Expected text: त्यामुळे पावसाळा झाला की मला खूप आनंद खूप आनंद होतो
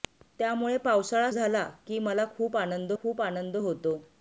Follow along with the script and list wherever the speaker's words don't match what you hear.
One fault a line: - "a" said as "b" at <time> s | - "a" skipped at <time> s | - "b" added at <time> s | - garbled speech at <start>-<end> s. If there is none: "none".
none